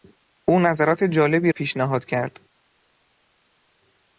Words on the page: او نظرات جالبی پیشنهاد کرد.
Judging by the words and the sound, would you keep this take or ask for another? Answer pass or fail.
pass